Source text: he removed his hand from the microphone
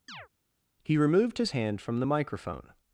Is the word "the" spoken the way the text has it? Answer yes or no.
yes